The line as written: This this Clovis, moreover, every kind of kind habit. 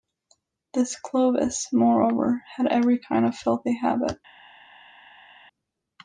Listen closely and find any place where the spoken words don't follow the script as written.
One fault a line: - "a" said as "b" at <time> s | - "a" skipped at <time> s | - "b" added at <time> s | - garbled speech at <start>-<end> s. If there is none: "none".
- "this" skipped at 1.0 s
- "had" added at 2.5 s
- "kind" said as "filthy" at 3.4 s